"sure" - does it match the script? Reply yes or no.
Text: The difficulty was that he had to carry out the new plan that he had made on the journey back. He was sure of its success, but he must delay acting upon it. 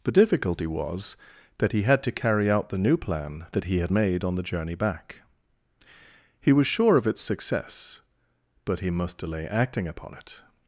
yes